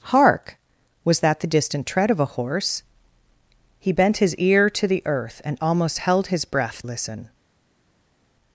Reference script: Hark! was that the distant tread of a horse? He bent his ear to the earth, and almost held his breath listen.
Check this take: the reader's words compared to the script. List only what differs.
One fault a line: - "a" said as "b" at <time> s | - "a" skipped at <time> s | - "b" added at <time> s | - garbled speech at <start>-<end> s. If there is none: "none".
none